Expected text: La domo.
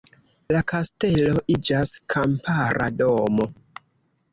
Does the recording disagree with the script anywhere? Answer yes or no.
yes